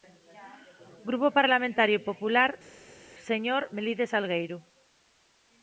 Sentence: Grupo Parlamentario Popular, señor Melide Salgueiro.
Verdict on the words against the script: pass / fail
pass